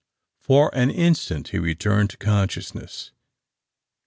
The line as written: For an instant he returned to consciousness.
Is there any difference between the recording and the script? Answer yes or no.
no